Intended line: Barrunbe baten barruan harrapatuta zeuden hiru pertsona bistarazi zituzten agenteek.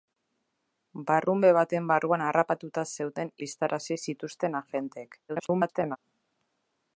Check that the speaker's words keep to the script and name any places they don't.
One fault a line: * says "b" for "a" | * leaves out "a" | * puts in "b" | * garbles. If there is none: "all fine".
* leaves out "hiru pertsona"
* garbles